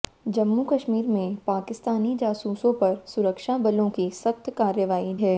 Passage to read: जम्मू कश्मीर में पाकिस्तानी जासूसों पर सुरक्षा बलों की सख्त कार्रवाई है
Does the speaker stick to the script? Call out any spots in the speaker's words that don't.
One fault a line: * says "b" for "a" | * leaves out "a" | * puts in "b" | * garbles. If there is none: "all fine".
all fine